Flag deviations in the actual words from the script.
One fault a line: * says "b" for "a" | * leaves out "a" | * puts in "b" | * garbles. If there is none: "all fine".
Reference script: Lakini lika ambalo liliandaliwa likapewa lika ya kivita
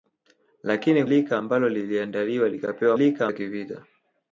all fine